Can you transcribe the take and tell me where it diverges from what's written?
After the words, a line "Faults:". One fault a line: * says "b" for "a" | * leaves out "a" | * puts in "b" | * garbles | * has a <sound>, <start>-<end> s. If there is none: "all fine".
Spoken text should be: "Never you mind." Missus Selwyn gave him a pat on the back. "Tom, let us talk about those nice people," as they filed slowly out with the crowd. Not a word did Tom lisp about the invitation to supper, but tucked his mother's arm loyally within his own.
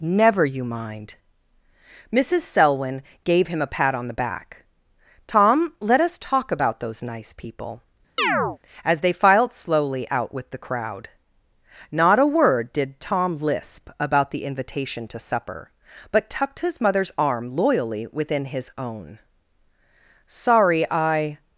"Never you mind." Missus Selwyn gave him a pat on the back. "Tom, let us talk about those nice people," as they filed slowly out with the crowd. Not a word did Tom lisp about the invitation to supper, but tucked his mother's arm loyally within his own. "Sorry I
Faults:
* has a chirp, 8.2-8.6 s
* puts in "Sorry I"